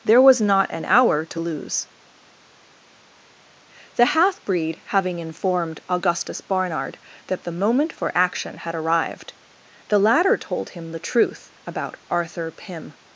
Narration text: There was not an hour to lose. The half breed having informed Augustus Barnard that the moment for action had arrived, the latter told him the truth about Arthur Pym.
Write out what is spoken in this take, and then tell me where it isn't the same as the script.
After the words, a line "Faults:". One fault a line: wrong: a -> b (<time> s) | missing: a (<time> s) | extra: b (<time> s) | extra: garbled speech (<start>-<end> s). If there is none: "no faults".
There was not an hour to lose. The half breed having informed Augustus Barnard that the moment for action had arrived, the latter told him the truth about Arthur Pym.
Faults:
no faults